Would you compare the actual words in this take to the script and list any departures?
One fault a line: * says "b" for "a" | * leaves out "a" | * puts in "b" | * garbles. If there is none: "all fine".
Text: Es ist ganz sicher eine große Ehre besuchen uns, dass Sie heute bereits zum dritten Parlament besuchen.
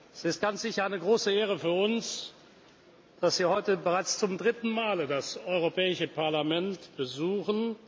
* says "für" for "besuchen"
* puts in "Mal das Europäische"